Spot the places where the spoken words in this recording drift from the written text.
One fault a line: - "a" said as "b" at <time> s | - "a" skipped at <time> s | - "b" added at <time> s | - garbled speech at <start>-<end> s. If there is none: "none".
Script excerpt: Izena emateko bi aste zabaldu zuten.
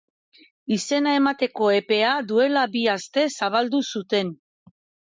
- "epea duela" added at 1.8 s